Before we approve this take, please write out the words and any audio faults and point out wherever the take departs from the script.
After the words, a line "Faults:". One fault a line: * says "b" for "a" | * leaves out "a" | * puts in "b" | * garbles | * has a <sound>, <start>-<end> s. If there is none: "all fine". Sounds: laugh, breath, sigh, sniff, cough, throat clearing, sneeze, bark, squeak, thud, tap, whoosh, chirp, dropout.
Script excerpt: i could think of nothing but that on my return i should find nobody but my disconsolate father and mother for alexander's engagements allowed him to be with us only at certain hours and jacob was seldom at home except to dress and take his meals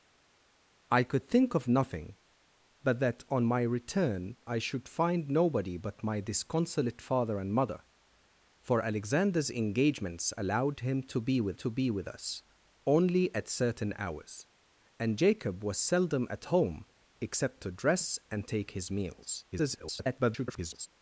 i could think of nothing but that on my return i should find nobody but my disconsolate father and mother for alexander's engagements allowed him to be with to be with us only at certain hours and jacob was seldom at home except to dress and take his meals [garbled]
Faults:
* puts in "to be with"
* garbles